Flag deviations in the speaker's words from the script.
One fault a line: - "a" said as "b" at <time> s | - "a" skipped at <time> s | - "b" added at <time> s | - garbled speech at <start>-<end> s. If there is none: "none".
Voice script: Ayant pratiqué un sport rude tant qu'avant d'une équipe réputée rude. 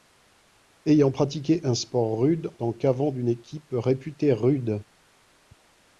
none